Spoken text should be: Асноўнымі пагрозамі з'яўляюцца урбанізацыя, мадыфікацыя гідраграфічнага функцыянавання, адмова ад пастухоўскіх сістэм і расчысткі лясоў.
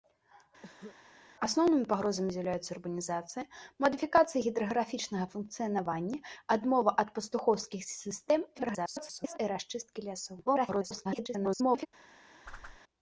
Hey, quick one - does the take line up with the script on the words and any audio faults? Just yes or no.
no